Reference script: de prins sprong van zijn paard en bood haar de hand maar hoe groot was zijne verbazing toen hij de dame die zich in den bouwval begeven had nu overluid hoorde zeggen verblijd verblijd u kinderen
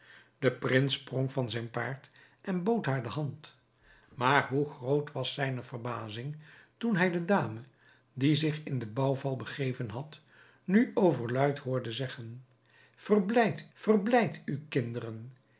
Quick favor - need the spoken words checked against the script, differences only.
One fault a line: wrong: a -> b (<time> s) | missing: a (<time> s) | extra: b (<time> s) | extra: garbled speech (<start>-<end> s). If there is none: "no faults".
no faults